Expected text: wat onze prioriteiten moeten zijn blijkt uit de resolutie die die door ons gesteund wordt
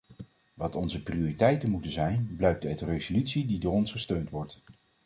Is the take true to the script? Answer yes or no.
no